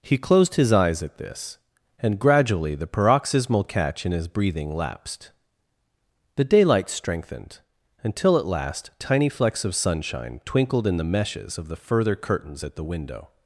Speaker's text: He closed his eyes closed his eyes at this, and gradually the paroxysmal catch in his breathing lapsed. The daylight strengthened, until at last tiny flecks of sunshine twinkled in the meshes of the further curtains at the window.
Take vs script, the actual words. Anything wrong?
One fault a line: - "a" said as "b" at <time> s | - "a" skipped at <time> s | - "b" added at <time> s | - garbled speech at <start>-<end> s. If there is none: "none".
- "closed his eyes" skipped at 1.0 s